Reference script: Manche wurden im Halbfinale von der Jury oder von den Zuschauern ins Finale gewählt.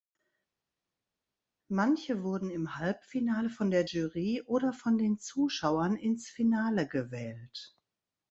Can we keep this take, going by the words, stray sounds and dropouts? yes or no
yes